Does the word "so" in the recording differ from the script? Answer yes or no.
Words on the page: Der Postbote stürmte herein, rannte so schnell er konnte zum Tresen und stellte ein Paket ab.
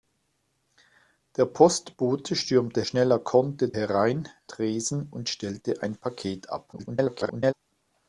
yes